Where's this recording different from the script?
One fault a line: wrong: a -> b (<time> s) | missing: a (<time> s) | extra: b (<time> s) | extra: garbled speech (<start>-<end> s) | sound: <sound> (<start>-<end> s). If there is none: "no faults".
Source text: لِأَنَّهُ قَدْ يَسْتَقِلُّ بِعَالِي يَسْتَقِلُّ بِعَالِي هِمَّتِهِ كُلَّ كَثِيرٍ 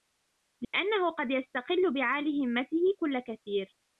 sound: dropout (0.6-0.7 s)
missing: يَسْتَقِلُّ بِعَالِي (2.5 s)